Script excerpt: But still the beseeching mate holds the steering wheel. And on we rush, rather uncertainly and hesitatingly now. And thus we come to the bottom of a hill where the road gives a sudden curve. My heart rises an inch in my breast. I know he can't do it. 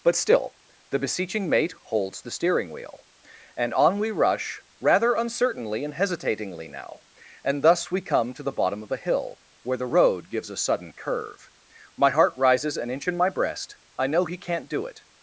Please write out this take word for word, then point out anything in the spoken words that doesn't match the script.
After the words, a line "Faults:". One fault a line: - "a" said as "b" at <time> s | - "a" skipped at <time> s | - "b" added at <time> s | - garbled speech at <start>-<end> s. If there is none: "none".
But still the beseeching mate holds the steering wheel. And on we rush, rather uncertainly and hesitatingly now. And thus we come to the bottom of a hill where the road gives a sudden curve. My heart rises an inch in my breast. I know he can't do it.
Faults:
none